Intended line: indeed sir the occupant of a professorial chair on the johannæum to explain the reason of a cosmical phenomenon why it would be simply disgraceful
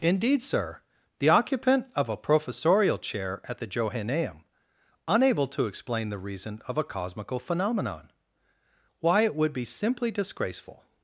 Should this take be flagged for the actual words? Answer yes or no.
yes